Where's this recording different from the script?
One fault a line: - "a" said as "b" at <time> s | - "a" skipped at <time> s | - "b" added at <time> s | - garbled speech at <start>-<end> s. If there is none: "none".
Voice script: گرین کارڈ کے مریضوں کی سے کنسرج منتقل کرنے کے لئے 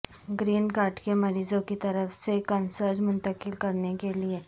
- "طرف" added at 1.8 s